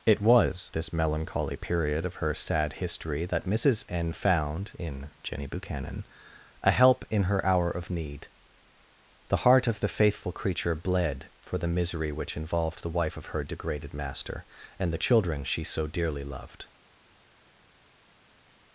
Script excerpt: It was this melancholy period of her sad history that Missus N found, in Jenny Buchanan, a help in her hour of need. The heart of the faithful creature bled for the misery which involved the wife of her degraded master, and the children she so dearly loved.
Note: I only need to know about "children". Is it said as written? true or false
true